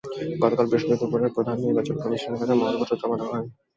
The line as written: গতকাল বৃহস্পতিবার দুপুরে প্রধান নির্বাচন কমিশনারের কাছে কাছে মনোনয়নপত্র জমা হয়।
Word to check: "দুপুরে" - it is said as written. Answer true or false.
true